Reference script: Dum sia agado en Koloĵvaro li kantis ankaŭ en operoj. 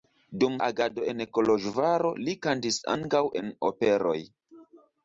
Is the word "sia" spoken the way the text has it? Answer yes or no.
no